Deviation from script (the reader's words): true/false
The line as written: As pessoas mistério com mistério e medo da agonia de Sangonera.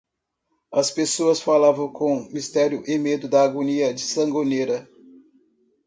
true